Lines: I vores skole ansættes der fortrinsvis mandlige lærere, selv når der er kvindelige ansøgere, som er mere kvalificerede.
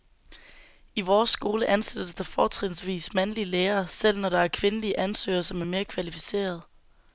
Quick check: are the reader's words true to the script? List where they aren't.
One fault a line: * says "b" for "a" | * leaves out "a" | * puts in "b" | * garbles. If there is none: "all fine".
all fine